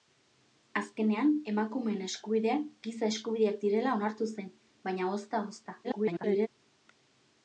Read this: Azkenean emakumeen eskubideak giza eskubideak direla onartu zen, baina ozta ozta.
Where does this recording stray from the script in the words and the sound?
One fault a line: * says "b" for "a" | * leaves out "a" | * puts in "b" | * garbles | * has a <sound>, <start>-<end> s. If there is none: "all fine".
* garbles